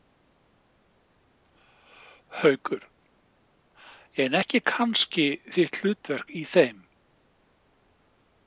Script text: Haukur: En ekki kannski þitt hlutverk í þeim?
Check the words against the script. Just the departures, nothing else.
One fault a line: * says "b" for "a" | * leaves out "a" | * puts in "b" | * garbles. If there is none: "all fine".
all fine